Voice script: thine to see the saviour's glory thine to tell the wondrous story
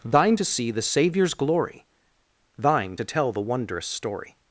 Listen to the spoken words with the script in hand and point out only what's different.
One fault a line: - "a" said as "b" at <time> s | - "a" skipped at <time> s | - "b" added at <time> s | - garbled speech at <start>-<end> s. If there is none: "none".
none